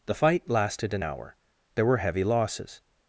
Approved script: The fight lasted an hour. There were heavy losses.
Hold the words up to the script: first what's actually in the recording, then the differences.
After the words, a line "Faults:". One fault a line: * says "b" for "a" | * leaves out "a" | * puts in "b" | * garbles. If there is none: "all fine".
The fight lasted an hour. There were heavy losses.
Faults:
all fine